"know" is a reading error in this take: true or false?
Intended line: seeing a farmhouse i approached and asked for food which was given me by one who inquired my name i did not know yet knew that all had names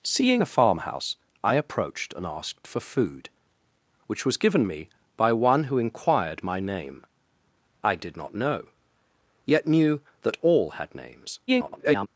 false